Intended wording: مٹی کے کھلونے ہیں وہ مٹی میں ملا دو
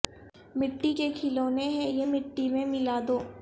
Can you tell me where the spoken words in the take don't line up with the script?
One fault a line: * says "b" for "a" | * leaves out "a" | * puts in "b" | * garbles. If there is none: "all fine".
* says "یہ" for "وہ"